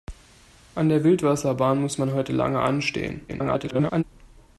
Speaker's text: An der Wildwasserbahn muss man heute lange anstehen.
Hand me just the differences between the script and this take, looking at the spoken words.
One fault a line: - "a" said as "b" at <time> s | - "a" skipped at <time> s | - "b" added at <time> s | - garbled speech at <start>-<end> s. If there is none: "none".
- garbled speech at 3.3-4.0 s